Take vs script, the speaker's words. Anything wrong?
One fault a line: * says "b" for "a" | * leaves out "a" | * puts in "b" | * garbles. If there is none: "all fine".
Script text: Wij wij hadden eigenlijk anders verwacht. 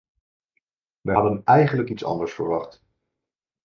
* leaves out "wij"
* puts in "iets"